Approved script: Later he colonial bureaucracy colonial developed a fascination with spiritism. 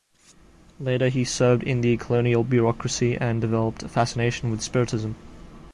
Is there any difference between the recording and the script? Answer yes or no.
yes